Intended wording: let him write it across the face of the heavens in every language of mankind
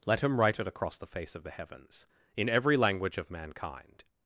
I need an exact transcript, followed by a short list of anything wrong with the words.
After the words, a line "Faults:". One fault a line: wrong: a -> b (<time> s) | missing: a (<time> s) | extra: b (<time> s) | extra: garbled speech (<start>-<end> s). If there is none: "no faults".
let him write it across the face of the heavens in every language of mankind
Faults:
no faults